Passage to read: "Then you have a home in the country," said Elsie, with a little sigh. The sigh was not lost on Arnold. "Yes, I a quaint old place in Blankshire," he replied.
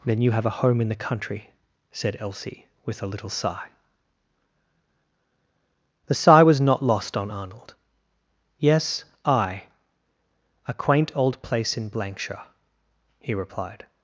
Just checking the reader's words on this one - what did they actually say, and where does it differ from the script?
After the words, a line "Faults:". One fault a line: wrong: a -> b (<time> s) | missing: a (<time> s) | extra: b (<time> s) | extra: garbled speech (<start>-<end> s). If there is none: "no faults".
"Then you have a home in the country," said Elsie, with a little sigh. The sigh was not lost on Arnold. "Yes, I a quaint old place in Blankshire," he replied.
Faults:
no faults